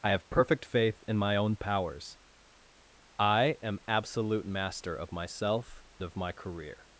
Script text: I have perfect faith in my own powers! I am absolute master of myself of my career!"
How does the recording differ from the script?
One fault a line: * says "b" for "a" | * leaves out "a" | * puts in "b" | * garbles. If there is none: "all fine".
all fine